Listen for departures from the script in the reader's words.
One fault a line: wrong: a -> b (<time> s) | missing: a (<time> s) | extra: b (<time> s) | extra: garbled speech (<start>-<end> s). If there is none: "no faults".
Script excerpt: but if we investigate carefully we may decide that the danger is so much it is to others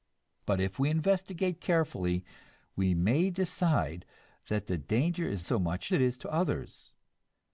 no faults